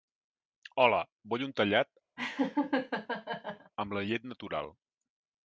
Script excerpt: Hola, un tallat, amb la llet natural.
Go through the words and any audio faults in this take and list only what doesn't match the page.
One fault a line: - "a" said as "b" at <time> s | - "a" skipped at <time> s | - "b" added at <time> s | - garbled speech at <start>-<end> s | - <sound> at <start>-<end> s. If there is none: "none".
- "vull" added at 1.3 s
- laugh at 2.2-3.7 s